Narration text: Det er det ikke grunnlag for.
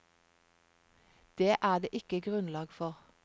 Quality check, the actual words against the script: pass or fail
pass